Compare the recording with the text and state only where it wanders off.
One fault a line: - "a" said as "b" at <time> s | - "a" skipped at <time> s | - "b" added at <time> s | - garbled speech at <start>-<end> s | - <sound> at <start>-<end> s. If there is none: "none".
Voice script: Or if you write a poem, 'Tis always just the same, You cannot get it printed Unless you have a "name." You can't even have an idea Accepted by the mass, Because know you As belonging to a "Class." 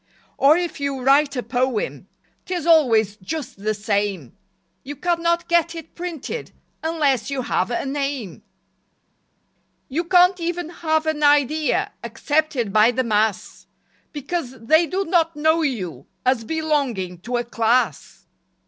- "they do not" added at 14.6 s